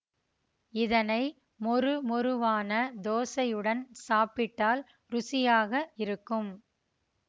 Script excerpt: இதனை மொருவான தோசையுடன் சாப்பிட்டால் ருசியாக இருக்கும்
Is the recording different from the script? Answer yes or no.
yes